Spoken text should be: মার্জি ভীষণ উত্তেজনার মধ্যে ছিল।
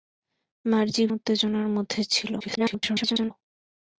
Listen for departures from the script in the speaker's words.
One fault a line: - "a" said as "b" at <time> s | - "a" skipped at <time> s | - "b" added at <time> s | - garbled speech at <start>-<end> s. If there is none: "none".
- "ভীষণ" skipped at 1.0 s
- garbled speech at 2.4-3.3 s